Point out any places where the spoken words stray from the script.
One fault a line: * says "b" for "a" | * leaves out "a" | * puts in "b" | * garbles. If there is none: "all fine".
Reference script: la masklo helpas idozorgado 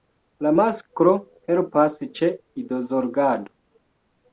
* puts in "ĉe"